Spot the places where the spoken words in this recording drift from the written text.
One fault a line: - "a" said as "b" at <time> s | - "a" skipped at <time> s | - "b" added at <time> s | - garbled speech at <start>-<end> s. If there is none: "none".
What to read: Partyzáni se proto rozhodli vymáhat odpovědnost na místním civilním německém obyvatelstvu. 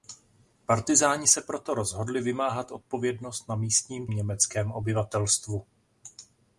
- "civilním" skipped at 4.1 s